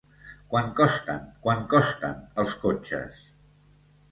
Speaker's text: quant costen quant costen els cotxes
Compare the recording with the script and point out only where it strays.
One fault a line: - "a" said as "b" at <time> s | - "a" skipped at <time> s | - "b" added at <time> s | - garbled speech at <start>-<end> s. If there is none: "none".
none